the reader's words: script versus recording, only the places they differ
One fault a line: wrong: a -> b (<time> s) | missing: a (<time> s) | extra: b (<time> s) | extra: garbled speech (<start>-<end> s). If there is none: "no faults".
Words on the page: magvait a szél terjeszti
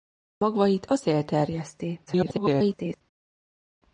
extra: garbled speech (2.1-3.0 s)